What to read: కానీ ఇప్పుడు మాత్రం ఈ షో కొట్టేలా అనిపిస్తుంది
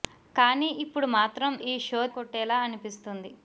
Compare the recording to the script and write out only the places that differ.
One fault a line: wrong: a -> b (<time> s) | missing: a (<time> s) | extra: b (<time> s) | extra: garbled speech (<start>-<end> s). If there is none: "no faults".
no faults